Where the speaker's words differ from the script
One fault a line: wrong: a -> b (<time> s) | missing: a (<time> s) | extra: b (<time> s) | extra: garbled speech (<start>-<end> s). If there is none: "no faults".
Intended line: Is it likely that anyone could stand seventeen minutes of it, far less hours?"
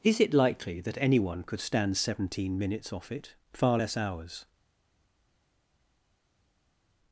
wrong: of -> off (2.9 s)